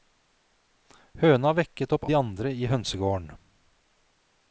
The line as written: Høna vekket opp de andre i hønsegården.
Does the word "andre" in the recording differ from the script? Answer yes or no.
no